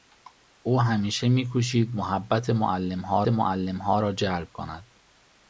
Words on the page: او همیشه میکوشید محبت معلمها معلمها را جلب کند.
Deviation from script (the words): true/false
false